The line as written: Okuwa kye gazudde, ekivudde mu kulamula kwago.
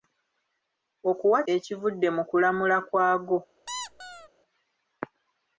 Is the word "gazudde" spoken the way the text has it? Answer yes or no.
no